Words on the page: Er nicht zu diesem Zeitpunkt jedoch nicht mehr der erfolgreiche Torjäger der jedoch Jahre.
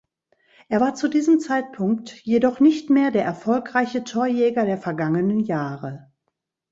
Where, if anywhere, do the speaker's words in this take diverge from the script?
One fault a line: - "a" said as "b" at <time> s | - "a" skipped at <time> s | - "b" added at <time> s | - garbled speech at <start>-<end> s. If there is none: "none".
- "nicht" said as "war" at 0.8 s
- "jedoch" said as "vergangenen" at 4.8 s